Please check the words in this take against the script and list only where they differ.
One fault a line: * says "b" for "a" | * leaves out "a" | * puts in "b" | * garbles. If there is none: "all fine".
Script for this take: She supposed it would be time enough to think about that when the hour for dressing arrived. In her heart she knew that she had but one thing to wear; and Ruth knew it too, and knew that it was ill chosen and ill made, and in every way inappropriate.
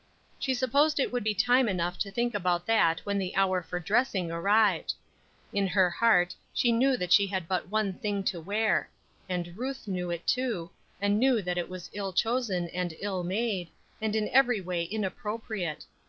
all fine